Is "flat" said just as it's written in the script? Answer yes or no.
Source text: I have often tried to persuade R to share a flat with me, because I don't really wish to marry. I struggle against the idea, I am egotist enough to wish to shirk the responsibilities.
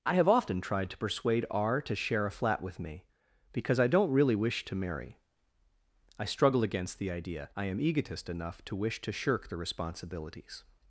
yes